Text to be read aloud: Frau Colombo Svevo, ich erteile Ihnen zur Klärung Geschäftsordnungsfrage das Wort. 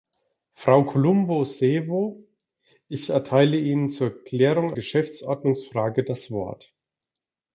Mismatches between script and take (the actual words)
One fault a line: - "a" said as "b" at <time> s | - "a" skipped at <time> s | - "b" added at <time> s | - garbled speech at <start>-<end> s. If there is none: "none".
none